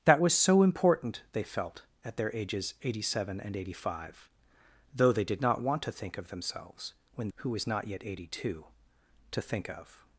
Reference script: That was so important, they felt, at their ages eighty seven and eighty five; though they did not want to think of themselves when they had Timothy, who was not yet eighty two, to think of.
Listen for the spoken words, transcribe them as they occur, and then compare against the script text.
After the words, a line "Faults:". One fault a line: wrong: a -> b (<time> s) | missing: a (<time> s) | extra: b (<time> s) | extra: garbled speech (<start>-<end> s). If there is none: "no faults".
That was so important, they felt, at their ages eighty seven and eighty five; though they did not want to think of themselves when who was not yet eighty two, to think of.
Faults:
missing: they had Timothy (7.3 s)